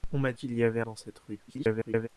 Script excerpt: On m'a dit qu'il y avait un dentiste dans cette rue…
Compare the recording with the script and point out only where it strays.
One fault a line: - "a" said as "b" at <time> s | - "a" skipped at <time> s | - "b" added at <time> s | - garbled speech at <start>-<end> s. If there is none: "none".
- "dit" skipped at 0.3 s
- "un dentiste" skipped at 0.8 s
- garbled speech at 1.5-2.1 s